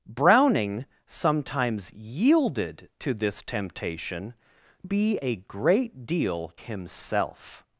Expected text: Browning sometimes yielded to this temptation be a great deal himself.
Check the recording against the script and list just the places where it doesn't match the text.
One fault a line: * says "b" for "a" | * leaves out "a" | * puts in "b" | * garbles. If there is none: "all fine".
all fine